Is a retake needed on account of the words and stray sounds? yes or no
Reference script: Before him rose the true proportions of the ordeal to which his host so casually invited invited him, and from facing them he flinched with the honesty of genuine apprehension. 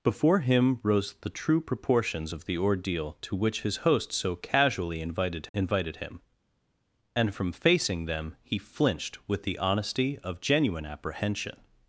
no